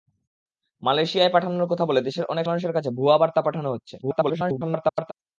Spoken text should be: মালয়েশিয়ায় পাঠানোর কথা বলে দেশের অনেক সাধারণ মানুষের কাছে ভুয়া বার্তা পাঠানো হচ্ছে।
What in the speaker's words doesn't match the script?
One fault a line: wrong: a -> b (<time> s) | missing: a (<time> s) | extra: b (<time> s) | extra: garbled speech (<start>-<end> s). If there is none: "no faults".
missing: সাধারণ (2.5 s)
extra: garbled speech (4.0-5.1 s)